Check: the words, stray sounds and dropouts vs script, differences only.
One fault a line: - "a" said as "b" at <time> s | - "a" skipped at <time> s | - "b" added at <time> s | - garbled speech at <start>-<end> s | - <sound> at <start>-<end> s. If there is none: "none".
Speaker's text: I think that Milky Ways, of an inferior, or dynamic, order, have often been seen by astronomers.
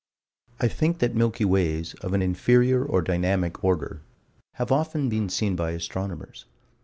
none